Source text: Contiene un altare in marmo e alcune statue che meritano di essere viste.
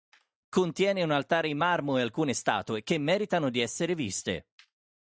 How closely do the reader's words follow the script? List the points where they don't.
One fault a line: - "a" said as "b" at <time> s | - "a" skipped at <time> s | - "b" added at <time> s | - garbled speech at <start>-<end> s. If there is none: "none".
none